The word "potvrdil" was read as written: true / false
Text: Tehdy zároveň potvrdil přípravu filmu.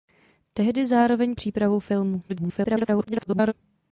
false